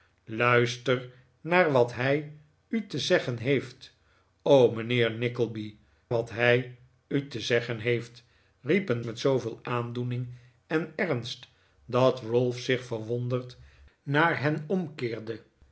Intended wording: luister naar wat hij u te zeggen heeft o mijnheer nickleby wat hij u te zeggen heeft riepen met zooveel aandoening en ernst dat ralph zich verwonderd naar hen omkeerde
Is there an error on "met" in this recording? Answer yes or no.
no